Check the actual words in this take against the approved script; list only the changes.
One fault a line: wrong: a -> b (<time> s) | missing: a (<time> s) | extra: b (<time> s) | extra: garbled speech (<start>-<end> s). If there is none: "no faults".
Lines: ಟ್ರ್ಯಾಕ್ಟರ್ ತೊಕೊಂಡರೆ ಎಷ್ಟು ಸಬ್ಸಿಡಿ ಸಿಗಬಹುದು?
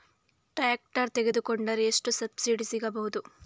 no faults